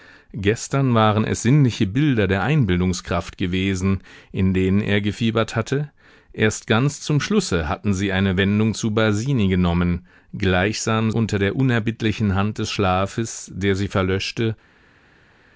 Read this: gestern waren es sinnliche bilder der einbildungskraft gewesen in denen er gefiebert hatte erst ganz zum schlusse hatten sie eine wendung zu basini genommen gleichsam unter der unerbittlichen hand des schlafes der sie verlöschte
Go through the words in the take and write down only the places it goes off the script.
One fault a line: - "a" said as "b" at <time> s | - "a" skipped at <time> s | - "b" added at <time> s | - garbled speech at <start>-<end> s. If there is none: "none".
none